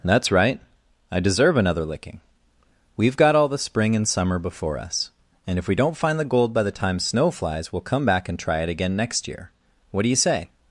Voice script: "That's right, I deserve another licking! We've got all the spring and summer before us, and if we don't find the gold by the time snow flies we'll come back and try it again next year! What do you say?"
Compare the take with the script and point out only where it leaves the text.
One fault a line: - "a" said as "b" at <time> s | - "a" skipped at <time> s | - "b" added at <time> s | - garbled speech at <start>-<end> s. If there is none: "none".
none